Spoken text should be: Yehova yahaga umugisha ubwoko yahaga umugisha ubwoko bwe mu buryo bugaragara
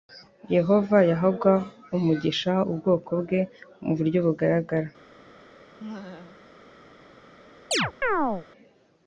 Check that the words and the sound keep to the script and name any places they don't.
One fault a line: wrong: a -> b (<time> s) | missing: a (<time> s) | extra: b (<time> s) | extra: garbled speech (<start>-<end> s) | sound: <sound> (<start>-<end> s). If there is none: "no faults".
missing: yahaga umugisha ubwoko (3.1 s)
sound: laugh (5.8-6.5 s)
sound: chirp (7.7-8.5 s)